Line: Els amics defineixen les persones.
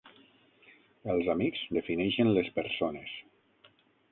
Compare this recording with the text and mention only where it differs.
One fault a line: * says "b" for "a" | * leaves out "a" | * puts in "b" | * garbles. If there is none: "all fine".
all fine